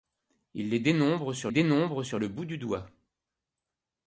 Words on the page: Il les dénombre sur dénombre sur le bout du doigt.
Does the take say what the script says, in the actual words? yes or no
yes